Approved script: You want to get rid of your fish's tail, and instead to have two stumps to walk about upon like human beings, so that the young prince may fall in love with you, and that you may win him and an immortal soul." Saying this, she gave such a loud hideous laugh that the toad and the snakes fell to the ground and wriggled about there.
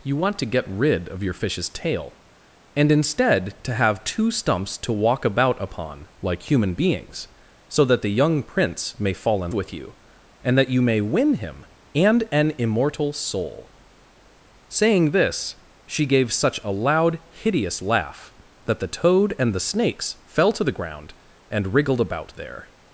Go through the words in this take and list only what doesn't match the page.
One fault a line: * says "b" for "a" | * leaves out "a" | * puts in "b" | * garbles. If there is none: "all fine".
* leaves out "love"